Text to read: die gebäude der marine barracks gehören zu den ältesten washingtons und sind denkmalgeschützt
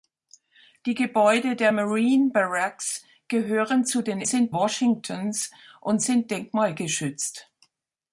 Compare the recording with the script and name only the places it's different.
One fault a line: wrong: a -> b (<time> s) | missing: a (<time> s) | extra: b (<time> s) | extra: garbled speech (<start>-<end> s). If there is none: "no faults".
wrong: ältesten -> sind (4.3 s)